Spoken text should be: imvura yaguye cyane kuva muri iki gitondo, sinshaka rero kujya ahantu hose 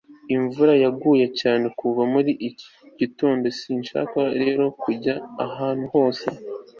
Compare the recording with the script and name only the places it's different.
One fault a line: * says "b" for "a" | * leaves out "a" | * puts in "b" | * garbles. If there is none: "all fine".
all fine